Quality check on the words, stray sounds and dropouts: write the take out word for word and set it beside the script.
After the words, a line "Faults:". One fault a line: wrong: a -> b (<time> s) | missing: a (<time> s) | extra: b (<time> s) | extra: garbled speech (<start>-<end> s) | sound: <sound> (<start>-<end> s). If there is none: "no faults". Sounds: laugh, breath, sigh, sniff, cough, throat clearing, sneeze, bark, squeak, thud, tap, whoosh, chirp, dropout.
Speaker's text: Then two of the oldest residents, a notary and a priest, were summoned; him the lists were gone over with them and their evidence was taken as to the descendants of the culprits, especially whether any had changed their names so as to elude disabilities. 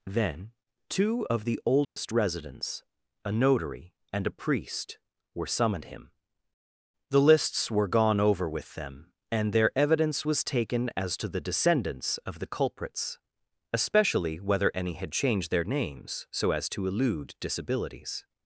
Then two of the oldest residents, a notary and a priest, were summoned; him the lists were gone over with them and their evidence was taken as to the descendants of the culprits, especially whether any had changed their names so as to elude disabilities.
Faults:
sound: dropout (1.8-2.0 s)